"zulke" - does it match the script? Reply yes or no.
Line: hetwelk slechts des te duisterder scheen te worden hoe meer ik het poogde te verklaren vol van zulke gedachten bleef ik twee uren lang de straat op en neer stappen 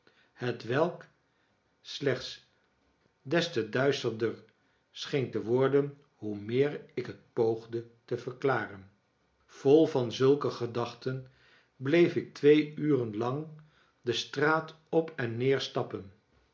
yes